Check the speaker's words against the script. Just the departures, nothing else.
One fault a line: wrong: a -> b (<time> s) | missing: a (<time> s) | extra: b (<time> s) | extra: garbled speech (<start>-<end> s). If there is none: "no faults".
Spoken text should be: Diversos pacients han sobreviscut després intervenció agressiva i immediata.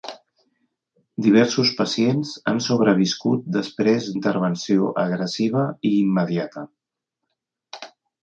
no faults